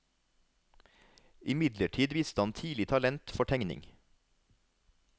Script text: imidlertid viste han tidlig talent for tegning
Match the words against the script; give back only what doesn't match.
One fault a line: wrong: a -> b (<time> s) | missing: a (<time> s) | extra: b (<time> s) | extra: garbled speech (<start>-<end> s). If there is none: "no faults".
no faults